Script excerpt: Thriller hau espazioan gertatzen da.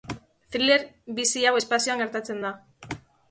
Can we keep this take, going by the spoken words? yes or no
no